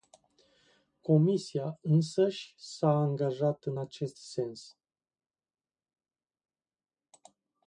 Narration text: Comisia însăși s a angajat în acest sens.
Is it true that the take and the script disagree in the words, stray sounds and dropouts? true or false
false